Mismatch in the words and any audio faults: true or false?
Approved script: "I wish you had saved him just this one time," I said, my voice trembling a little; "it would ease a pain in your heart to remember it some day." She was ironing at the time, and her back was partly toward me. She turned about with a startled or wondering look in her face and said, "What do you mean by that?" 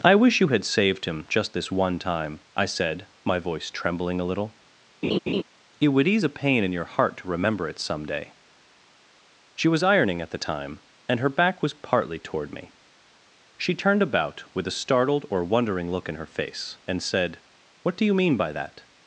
true